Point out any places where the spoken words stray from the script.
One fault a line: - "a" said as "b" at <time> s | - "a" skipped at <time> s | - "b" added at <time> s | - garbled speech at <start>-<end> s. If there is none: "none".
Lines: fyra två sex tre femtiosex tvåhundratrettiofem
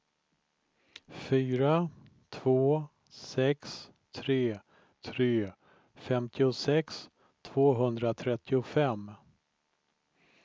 - "tre" added at 5.0 s